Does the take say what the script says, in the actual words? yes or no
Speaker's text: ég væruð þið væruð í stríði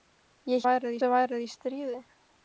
yes